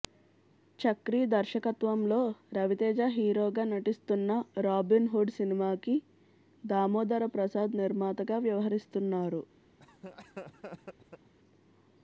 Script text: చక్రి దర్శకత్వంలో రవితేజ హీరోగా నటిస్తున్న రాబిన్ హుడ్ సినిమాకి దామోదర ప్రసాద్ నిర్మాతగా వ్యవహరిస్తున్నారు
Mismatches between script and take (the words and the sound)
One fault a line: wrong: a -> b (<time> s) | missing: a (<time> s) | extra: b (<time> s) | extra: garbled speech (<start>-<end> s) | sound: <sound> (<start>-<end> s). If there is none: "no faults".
sound: laugh (9.8-11.3 s)